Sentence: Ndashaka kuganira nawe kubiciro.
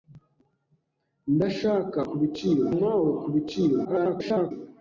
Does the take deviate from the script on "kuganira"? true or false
true